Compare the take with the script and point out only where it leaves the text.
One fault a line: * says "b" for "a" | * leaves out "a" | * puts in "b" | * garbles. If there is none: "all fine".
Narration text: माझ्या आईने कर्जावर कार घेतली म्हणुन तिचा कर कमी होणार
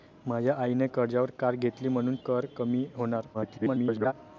* leaves out "तिचा"
* garbles